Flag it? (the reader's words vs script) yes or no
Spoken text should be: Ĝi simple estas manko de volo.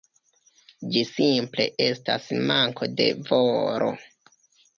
no